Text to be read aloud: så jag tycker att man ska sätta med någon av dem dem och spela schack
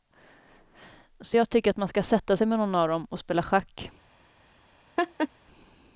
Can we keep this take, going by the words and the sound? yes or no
no